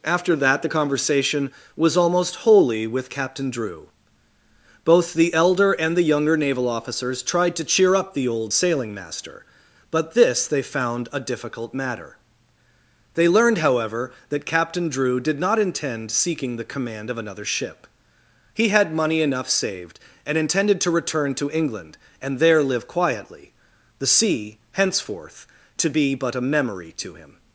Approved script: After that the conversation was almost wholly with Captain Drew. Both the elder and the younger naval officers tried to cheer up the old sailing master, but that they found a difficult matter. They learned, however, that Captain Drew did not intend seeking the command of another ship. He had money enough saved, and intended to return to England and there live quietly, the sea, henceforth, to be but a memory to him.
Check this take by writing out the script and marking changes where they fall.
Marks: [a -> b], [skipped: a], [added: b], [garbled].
After that the conversation was almost wholly with Captain Drew. Both the elder and the younger naval officers tried to cheer up the old sailing master, but [that -> this] they found a difficult matter. They learned, however, that Captain Drew did not intend seeking the command of another ship. He had money enough saved, and intended to return to England and there live quietly, the sea, henceforth, to be but a memory to him.